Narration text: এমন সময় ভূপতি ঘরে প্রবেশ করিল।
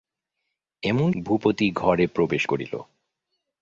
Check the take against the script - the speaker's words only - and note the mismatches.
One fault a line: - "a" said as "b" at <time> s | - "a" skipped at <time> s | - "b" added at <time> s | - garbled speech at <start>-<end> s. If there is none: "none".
- "সময়" skipped at 1.1 s